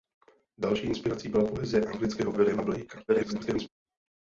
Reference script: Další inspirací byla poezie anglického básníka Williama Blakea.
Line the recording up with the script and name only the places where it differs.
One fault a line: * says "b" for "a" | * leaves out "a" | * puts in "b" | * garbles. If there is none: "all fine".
* leaves out "básníka"
* garbles